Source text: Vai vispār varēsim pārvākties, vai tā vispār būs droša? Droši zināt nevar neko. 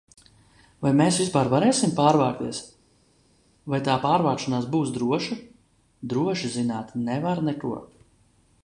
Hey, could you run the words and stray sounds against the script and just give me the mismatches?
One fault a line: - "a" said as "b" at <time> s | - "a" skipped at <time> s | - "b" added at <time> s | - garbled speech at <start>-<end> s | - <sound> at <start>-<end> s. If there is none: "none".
- "mēs" added at 1.0 s
- "vispār" said as "pārvākšanās" at 4.0 s